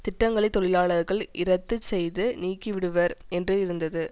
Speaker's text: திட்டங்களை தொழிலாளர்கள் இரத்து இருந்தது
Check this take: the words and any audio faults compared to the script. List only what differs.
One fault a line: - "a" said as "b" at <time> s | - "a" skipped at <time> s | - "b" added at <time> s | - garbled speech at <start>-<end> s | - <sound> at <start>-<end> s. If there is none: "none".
- "செய்து நீக்கிவிடுவர் என்று" added at 1.8 s